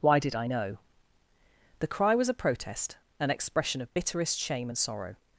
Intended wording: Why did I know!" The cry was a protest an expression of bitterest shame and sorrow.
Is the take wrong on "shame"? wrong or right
right